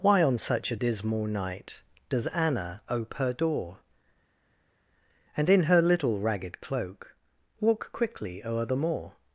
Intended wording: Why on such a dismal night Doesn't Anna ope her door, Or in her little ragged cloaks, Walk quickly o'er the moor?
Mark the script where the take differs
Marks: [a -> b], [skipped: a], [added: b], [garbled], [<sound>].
Why on such a dismal night [Doesn't -> Does] Anna ope her door, [Or -> And] in her little ragged [cloaks, -> cloak] Walk quickly o'er the moor?